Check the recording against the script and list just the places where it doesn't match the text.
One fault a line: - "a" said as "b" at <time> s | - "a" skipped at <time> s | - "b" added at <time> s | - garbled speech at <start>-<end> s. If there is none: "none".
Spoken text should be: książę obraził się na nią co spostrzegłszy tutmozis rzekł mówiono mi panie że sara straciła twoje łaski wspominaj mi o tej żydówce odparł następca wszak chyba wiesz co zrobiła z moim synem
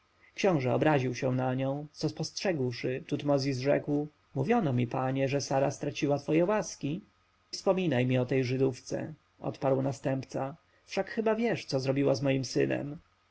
none